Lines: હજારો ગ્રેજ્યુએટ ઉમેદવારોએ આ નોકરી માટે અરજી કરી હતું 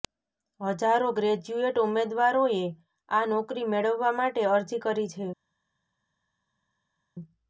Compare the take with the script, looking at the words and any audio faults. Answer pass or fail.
fail